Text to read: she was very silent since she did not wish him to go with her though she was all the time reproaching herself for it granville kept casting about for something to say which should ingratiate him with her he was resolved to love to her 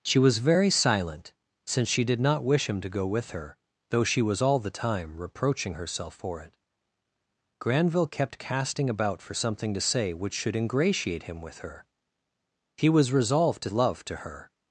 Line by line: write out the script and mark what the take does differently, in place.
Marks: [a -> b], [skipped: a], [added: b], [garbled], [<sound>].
she was very silent since she did not wish him to go with her though she was all the time reproaching herself for it granville kept casting about for something to say which should ingratiate him with her he was resolved to love to her